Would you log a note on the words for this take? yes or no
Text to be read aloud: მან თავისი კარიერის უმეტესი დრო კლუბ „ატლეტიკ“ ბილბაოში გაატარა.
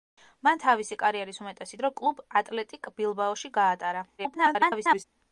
yes